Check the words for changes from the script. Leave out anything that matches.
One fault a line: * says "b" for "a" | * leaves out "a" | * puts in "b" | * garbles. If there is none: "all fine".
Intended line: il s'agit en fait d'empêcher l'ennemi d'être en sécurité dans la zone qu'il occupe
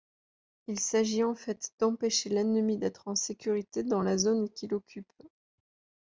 all fine